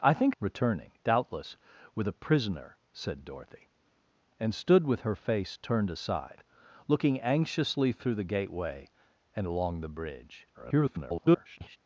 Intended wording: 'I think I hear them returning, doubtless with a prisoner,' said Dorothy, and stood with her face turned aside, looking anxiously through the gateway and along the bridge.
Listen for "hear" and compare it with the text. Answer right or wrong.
wrong